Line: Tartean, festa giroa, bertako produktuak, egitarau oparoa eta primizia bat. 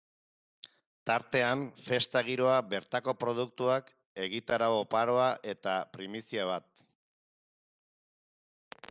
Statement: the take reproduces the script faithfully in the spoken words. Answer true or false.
true